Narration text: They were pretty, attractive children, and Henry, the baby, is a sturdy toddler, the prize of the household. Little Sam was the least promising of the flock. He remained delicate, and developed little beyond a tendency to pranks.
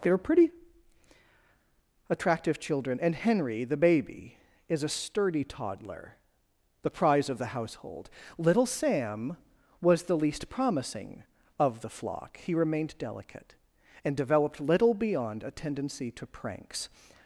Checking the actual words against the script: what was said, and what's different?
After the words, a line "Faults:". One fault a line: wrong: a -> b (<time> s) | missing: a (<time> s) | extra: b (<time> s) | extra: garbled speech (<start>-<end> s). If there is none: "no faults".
They were pretty, attractive children, and Henry, the baby, is a sturdy toddler, the prize of the household. Little Sam was the least promising of the flock. He remained delicate, and developed little beyond a tendency to pranks.
Faults:
no faults